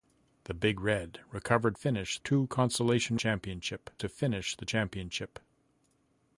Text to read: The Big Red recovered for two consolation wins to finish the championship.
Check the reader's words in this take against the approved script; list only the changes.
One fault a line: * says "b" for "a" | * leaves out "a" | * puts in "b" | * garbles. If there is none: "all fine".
* says "finish" for "for"
* says "championship" for "wins"